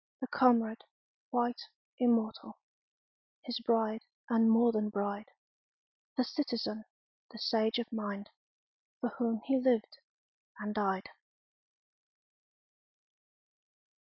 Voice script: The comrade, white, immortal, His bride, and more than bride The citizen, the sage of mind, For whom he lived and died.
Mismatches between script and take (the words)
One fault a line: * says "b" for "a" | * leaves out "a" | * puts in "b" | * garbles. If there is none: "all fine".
all fine